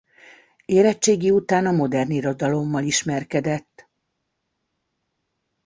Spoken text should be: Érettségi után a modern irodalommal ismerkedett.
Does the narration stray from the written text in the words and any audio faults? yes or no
no